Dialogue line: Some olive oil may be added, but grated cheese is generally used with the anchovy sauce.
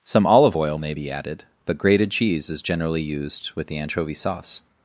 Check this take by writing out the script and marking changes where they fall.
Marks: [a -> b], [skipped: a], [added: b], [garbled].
Some olive oil may be added, but grated cheese is generally used with the anchovy sauce.